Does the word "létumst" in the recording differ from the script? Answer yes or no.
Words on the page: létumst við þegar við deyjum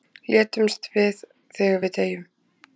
no